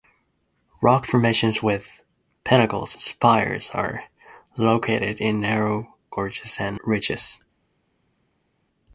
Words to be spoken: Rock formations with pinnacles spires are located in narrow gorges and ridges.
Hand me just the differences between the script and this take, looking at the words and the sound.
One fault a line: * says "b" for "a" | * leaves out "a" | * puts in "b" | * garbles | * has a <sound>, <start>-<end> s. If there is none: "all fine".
all fine